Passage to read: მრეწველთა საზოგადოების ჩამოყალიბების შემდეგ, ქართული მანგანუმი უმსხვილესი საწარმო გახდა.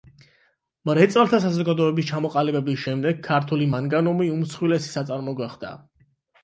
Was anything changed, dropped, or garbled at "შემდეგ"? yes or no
no